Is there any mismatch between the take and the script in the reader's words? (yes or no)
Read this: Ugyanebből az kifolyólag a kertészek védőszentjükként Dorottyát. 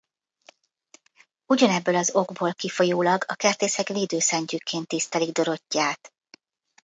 yes